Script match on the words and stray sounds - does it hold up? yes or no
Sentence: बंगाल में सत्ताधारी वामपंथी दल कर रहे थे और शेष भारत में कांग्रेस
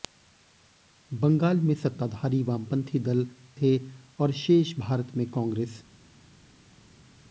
no